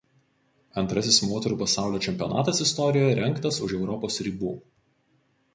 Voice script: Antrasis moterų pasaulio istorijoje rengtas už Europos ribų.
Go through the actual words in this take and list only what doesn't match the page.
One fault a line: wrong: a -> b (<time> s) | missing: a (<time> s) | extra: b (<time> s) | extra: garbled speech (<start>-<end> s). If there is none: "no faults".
extra: čempionatas (2.1 s)